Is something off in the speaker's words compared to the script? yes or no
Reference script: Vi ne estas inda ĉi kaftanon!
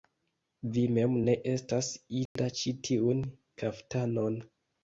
yes